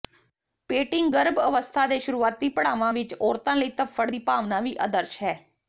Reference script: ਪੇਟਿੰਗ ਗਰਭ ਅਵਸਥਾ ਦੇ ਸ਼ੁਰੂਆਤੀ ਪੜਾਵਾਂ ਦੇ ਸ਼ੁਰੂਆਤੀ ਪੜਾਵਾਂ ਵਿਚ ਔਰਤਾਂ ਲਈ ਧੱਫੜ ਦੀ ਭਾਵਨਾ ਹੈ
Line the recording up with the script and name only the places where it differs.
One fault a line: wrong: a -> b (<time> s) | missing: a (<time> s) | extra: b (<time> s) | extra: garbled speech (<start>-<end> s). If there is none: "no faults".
missing: ਦੇ ਸ਼ੁਰੂਆਤੀ ਪੜਾਵਾਂ (2.9 s)
extra: ਵੀ ਆਦਰਸ਼ (4.6 s)